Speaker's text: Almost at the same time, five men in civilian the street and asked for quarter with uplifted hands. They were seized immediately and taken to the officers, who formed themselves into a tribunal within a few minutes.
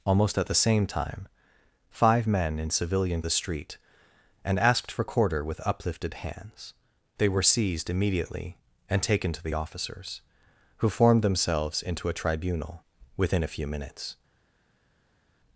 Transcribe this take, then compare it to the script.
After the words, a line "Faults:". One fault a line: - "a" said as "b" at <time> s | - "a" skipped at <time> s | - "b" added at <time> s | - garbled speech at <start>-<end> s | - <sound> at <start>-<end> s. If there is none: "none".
Almost at the same time, five men in civilian the street and asked for quarter with uplifted hands. They were seized immediately and taken to the officers, who formed themselves into a tribunal within a few minutes.
Faults:
none